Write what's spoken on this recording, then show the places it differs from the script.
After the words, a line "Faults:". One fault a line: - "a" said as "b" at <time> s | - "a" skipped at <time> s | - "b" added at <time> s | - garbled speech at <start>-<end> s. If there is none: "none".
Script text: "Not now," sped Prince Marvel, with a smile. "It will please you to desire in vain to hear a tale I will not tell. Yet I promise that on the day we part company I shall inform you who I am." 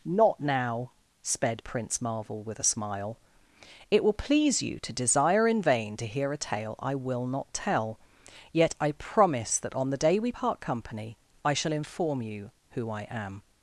"Not now," sped Prince Marvel, with a smile. "It will please you to desire in vain to hear a tale I will not tell. Yet I promise that on the day we part company I shall inform you who I am."
Faults:
none